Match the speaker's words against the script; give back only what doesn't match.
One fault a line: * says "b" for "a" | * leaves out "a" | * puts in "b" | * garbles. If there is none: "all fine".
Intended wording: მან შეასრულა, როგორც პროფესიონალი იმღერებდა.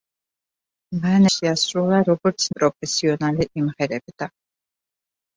all fine